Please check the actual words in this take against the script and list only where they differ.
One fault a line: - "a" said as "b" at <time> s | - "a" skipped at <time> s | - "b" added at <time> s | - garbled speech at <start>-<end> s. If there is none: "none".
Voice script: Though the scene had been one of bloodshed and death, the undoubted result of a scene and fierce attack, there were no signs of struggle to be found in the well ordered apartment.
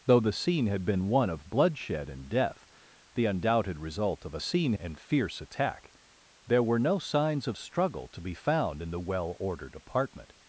none